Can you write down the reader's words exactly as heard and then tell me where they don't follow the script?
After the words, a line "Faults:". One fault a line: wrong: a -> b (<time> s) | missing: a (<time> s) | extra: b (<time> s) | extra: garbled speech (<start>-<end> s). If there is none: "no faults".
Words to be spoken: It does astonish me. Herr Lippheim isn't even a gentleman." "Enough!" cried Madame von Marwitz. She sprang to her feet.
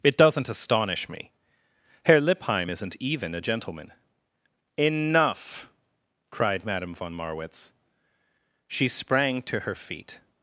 It doesn't astonish me. Herr Lippheim isn't even a gentleman." "Enough!" cried Madame von Marwitz. She sprang to her feet.
Faults:
wrong: does -> doesn't (0.2 s)